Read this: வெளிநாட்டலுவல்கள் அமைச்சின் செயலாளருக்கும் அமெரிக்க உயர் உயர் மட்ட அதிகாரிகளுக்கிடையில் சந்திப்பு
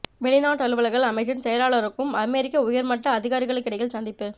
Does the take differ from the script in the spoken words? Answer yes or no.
yes